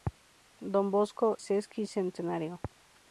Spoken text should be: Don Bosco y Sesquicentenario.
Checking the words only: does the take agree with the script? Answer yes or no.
no